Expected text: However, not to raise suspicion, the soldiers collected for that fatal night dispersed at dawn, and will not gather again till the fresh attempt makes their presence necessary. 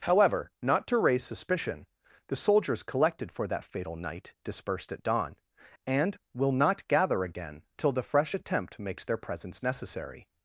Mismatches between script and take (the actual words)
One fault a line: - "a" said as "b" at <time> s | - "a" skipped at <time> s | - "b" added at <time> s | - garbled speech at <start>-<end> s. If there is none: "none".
none